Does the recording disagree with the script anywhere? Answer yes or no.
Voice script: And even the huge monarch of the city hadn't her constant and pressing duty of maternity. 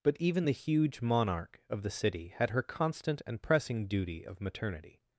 yes